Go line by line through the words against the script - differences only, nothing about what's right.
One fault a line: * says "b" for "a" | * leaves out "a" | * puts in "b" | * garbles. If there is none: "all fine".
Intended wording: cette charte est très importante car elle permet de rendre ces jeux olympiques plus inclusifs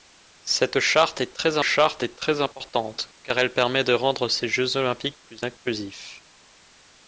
* puts in "charte est très"